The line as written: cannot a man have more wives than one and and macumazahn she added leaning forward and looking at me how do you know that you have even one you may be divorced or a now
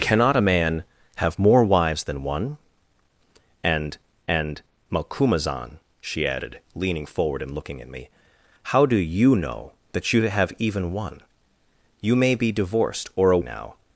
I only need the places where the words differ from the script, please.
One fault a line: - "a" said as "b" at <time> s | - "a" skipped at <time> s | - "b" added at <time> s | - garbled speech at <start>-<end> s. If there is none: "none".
none